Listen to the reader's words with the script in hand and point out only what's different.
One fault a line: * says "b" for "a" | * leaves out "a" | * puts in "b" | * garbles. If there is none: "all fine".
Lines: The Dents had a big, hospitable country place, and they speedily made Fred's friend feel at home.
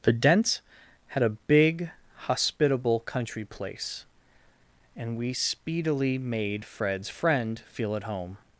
* says "we" for "they"